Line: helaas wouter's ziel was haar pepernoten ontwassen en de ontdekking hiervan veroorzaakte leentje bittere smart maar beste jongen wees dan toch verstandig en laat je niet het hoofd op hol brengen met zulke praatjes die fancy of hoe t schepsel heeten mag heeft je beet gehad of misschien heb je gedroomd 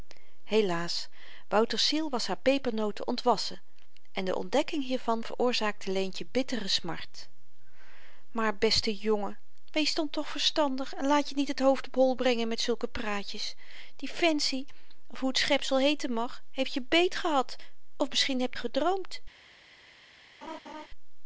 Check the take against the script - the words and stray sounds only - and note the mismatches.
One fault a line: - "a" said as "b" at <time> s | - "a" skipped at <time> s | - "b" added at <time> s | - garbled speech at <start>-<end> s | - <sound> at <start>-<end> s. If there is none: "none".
- "je" skipped at 18.5 s
- laugh at 20.4-20.9 s